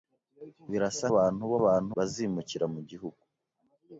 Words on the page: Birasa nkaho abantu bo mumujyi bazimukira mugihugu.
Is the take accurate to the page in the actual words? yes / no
no